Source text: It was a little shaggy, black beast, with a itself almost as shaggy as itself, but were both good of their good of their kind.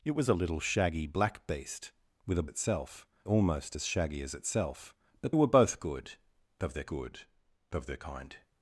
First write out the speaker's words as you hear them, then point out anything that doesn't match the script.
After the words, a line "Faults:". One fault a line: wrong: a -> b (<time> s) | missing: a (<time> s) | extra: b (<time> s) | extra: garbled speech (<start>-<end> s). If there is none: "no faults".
It was a little shaggy, black beast, with a itself almost as shaggy as itself, but were both good of their good of their kind.
Faults:
no faults